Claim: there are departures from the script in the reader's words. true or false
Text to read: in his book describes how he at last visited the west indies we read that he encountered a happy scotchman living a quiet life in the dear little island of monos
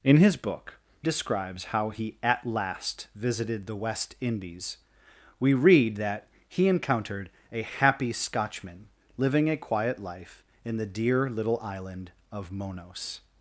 false